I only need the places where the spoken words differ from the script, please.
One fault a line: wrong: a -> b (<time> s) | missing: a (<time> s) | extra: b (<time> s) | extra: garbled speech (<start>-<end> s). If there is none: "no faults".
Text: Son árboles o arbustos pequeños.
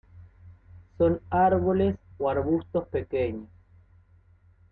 no faults